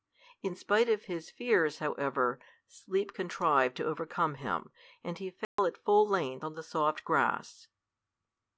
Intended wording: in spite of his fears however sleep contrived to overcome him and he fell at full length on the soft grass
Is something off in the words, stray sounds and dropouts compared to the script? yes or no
yes